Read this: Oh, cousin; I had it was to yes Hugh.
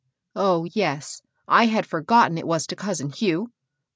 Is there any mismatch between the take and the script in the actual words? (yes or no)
yes